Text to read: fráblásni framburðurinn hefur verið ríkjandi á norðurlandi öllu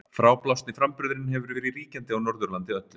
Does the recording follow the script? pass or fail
pass